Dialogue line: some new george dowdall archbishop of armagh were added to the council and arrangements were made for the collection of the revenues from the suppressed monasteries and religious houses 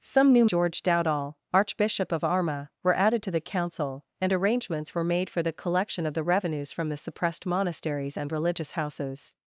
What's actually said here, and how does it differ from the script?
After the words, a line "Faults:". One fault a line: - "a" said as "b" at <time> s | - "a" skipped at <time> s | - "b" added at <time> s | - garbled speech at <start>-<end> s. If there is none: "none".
some new george dowdall archbishop of armagh were added to the council and arrangements were made for the collection of the revenues from the suppressed monasteries and religious houses
Faults:
none